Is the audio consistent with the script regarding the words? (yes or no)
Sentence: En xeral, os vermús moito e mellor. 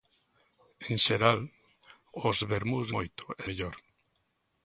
yes